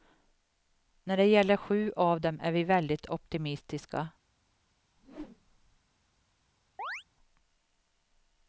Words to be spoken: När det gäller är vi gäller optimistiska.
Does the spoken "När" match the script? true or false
true